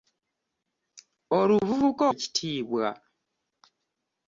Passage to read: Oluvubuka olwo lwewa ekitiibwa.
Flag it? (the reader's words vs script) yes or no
yes